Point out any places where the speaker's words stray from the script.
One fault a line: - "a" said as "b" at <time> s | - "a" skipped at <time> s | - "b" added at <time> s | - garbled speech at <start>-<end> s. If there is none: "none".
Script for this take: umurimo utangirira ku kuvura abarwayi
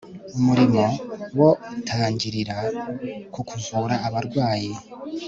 - "wo" added at 1.4 s